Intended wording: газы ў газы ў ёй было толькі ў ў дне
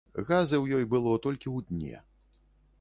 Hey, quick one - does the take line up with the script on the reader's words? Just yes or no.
no